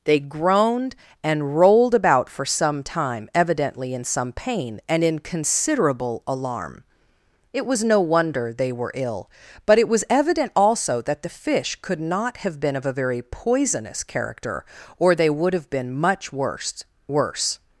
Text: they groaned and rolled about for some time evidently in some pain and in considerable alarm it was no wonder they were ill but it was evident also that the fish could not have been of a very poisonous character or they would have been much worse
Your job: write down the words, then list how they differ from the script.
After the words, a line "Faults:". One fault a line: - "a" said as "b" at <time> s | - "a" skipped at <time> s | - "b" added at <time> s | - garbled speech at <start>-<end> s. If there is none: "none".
they groaned and rolled about for some time evidently in some pain and in considerable alarm it was no wonder they were ill but it was evident also that the fish could not have been of a very poisonous character or they would have been much worse worse
Faults:
- "worse" added at 17.1 s